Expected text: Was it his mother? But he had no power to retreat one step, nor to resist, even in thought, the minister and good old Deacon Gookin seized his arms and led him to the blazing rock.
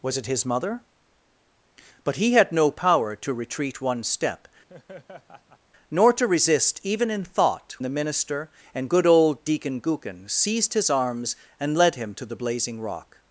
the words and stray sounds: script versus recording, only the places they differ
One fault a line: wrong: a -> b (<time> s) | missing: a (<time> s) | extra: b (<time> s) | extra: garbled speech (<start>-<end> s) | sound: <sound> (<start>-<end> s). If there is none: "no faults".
sound: laugh (4.7-5.6 s)